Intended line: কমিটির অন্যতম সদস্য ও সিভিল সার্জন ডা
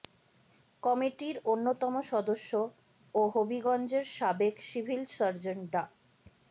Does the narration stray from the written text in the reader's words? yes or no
yes